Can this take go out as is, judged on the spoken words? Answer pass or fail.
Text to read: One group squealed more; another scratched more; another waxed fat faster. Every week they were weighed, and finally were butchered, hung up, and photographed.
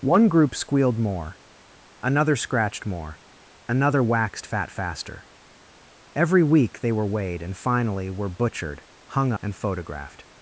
fail